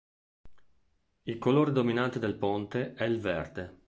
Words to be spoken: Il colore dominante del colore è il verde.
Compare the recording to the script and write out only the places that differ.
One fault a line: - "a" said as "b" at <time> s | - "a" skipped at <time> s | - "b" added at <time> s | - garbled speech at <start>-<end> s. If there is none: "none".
- "colore" said as "ponte" at 2.4 s